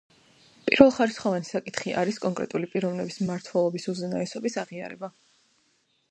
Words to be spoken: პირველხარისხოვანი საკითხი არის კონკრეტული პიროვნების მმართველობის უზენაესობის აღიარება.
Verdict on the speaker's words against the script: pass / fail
pass